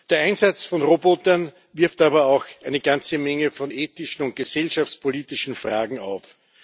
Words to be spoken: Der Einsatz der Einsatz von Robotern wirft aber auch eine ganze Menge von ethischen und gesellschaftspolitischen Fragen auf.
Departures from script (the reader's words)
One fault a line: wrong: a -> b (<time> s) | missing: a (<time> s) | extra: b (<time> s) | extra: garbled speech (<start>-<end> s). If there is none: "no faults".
missing: der Einsatz (0.7 s)